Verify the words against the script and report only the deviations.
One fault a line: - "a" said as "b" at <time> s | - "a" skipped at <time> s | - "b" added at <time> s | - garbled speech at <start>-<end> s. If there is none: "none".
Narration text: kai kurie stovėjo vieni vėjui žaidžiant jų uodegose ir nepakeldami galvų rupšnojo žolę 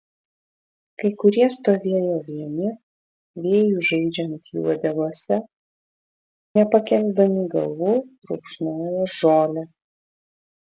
- "ir" skipped at 5.4 s